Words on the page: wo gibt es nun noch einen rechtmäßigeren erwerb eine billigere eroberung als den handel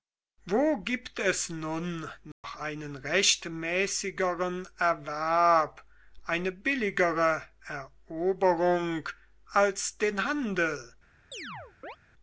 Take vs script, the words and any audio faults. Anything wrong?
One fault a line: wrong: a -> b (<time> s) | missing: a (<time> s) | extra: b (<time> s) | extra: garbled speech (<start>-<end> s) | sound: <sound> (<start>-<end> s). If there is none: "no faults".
sound: dropout (2.3-2.4 s)
sound: chirp (11.3-12.0 s)